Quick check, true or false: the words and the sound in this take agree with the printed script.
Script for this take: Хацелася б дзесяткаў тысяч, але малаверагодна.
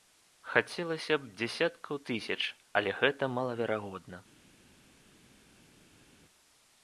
false